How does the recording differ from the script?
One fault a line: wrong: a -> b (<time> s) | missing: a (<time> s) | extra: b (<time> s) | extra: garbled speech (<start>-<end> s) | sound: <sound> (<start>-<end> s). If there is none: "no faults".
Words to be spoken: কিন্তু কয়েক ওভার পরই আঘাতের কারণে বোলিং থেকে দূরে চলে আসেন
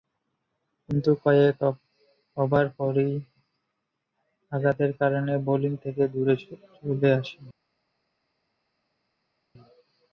no faults